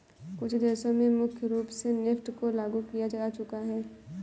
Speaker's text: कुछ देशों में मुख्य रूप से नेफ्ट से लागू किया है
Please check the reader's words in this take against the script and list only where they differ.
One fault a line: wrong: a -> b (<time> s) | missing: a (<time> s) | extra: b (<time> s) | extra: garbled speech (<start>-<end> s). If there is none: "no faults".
wrong: से -> को (2.3 s)
extra: जा चुका (3.1 s)